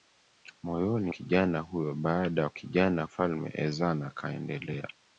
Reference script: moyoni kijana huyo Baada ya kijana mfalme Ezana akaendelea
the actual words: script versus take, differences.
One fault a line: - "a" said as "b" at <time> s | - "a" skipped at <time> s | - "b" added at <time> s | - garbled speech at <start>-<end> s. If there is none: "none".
none